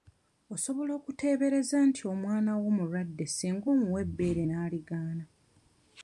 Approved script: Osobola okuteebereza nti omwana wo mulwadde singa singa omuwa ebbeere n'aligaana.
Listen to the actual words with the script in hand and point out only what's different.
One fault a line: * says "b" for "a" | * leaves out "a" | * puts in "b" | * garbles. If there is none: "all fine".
* leaves out "singa"